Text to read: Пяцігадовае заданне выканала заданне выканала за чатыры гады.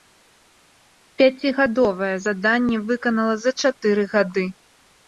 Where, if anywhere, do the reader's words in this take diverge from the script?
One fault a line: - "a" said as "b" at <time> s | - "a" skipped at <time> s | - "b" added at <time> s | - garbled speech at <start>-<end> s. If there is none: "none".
- "заданне выканала" skipped at 3.4 s